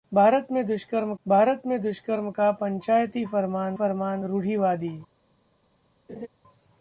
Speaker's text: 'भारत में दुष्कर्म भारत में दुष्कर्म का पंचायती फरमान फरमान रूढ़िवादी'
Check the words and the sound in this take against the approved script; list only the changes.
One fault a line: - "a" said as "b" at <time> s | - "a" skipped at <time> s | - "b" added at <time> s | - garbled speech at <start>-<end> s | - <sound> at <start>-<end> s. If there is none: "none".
- laugh at 6.1-6.3 s